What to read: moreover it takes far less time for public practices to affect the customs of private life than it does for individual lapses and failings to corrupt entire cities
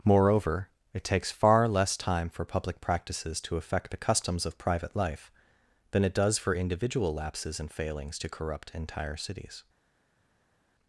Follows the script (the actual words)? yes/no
yes